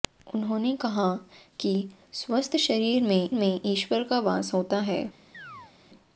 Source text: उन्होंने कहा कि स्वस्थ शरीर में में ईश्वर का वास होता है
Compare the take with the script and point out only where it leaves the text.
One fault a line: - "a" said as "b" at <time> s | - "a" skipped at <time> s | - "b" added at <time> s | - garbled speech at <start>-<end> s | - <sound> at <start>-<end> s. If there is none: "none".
- chirp at 5.3-5.7 s